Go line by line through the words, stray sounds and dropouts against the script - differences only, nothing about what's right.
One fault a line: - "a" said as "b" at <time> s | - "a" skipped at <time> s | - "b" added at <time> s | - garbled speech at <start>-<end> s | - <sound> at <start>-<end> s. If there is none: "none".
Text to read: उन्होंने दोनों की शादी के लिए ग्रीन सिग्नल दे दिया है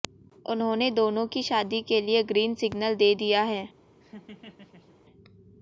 - laugh at 4.0-5.0 s